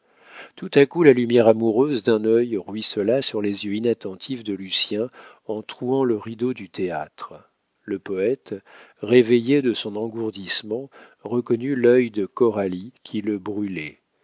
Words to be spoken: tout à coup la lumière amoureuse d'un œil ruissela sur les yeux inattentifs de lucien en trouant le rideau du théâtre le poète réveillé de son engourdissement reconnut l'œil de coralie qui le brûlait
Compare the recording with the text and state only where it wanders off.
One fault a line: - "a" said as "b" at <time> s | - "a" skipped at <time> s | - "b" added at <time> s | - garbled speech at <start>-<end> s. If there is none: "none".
none